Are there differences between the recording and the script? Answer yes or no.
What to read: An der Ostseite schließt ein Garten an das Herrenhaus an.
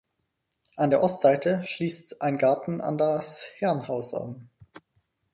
no